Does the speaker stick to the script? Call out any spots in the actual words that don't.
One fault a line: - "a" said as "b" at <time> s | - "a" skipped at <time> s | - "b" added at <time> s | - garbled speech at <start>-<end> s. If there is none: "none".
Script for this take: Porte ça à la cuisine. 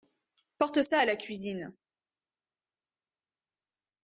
none